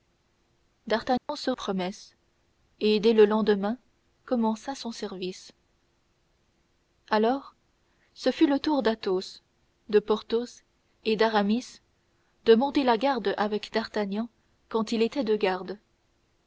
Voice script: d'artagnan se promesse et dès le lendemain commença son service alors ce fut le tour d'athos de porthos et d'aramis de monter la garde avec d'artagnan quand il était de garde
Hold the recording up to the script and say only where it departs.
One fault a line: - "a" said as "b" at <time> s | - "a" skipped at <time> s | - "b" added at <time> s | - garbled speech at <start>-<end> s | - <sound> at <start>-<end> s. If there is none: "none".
- dropout at 1.2-1.3 s